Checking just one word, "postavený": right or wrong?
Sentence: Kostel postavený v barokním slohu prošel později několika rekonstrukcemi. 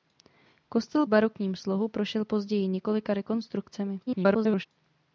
wrong